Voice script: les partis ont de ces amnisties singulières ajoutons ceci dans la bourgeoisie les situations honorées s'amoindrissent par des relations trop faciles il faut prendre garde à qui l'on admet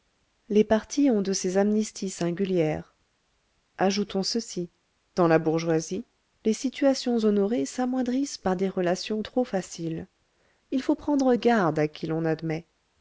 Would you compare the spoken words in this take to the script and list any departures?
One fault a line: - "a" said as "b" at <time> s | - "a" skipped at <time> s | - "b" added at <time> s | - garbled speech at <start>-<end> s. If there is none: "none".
none